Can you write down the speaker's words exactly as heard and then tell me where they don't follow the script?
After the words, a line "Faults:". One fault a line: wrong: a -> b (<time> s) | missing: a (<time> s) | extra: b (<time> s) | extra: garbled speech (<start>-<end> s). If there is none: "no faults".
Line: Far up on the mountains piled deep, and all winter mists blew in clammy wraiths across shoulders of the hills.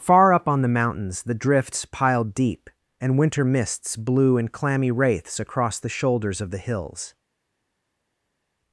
Far up on the mountains the drifts piled deep, and winter mists blew in clammy wraiths across the shoulders of the hills.
Faults:
extra: the drifts (1.2 s)
missing: all (3.2 s)
extra: the (5.8 s)